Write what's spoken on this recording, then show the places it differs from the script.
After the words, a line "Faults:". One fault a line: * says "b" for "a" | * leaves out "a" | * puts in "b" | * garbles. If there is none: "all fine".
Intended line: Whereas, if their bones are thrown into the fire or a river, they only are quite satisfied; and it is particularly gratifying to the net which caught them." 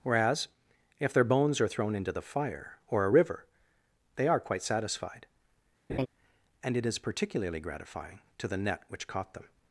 Whereas, if their bones are thrown into the fire or a river, they are quite satisfied; and it is particularly gratifying to the net which caught them."
Faults:
* leaves out "only"